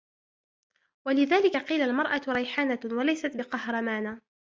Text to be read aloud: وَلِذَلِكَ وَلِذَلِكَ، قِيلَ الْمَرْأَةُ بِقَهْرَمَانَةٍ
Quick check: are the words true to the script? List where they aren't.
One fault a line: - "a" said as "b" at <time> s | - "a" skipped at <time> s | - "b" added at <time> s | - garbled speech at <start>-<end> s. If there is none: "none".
- "وَلِذَلِكَ" skipped at 1.6 s
- "رَيْحَانَةٌ وَلَيْسَتْ" added at 2.3 s